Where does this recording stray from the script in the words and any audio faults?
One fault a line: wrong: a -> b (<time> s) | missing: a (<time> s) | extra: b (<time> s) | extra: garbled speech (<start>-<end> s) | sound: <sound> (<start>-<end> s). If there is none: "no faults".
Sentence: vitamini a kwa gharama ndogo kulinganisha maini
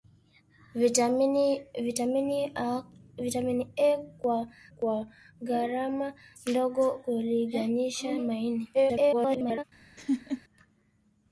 extra: kwa (4.8 s)
extra: garbled speech (8.7-9.6 s)
sound: laugh (10.0-10.4 s)